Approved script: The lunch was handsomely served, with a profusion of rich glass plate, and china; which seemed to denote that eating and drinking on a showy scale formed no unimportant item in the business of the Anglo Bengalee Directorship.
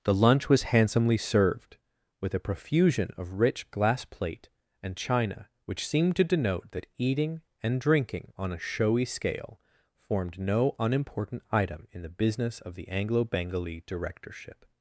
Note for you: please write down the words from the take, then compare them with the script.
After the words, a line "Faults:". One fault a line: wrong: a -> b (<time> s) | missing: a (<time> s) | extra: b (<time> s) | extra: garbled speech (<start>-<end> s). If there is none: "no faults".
The lunch was handsomely served, with a profusion of rich glass plate, and china; which seemed to denote that eating and drinking on a showy scale formed no unimportant item in the business of the Anglo Bengalee Directorship.
Faults:
no faults